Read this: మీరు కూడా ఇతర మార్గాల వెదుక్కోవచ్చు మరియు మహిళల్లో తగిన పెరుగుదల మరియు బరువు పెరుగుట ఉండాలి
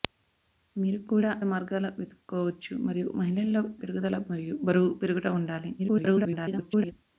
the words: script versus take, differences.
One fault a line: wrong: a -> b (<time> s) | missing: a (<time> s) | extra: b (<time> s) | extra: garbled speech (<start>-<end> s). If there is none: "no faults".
missing: ఇతర (1.3 s)
missing: తగిన (3.6 s)
extra: garbled speech (5.8-6.9 s)